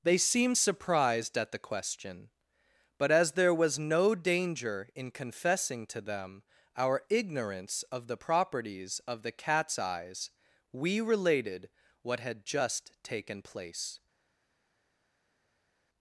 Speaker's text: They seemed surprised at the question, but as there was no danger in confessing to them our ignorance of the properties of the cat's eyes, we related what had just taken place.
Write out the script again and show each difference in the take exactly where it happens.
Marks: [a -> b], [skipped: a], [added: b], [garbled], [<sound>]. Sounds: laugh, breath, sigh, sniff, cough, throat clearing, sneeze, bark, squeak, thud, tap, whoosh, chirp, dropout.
They seemed surprised at the question, but as there was no danger in confessing to them our ignorance of the properties of the cat's eyes, we related what had just taken place.